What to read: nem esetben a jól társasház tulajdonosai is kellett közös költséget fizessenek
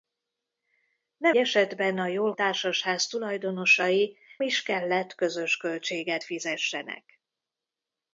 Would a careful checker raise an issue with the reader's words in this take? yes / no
no